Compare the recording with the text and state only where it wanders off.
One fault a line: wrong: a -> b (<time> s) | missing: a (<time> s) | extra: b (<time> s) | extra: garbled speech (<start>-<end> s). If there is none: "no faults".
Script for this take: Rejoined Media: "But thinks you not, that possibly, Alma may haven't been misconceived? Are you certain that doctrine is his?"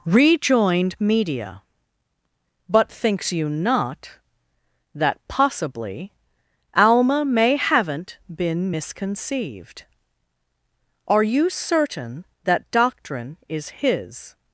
no faults